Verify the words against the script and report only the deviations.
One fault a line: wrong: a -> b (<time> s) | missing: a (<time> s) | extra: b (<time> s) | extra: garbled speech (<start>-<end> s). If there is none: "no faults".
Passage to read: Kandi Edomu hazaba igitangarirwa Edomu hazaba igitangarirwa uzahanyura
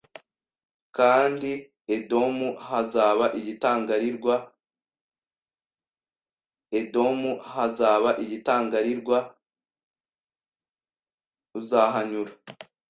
no faults